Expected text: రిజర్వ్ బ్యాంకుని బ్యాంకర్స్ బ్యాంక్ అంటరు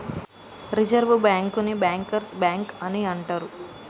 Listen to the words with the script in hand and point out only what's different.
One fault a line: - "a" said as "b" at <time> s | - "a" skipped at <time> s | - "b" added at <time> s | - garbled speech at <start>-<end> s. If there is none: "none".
- "అని" added at 2.8 s